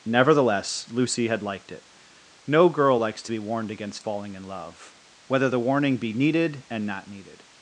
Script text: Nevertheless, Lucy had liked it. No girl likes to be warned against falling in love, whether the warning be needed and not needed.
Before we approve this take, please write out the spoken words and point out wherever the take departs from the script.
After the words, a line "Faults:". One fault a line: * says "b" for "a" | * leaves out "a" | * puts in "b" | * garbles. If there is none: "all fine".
Nevertheless, Lucy had liked it. No girl likes to be warned against falling in love, whether the warning be needed and not needed.
Faults:
all fine